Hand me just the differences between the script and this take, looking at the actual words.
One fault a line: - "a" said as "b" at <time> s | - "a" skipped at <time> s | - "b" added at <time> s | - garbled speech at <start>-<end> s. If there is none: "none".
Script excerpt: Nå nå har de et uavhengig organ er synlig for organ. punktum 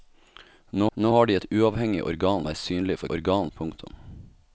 none